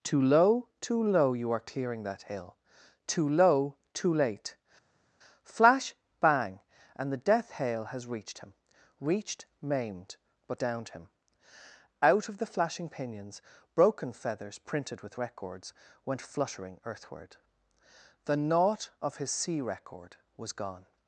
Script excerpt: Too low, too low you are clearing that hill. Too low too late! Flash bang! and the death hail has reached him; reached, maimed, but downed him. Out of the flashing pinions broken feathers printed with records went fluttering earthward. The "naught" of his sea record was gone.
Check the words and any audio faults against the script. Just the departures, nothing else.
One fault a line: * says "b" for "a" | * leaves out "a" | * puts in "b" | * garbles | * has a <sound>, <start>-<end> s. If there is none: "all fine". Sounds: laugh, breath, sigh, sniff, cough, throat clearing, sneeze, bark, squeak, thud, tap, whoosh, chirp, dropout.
all fine